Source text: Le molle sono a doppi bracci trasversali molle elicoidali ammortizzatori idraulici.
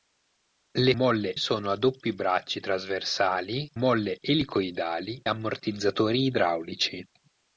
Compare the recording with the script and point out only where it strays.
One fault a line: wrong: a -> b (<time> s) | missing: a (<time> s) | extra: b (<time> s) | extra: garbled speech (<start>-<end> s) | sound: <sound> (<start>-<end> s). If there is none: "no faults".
no faults